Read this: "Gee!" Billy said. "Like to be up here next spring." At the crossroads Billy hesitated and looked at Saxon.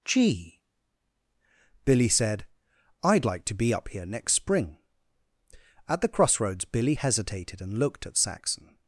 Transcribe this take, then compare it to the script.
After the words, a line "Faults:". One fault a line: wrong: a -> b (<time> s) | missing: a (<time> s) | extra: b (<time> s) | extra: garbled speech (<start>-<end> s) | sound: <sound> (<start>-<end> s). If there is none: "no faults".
"Gee!" Billy said. "I'd like to be up here next spring." At the crossroads Billy hesitated and looked at Saxon.
Faults:
extra: I'd (3.0 s)